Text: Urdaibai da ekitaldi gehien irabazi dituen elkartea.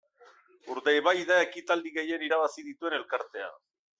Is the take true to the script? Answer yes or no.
yes